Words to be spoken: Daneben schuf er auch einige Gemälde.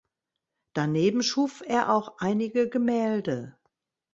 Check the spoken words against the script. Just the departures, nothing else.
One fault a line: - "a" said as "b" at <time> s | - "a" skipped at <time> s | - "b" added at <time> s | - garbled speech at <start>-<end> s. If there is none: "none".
none